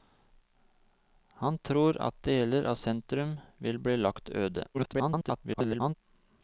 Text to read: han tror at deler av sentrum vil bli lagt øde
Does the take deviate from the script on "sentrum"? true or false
false